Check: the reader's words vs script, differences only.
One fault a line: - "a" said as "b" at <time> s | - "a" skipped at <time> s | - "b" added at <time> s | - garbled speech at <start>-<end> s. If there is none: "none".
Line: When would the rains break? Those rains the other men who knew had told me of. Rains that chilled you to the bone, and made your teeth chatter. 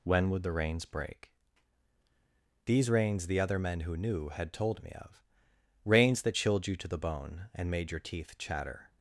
- "Those" said as "These" at 2.6 s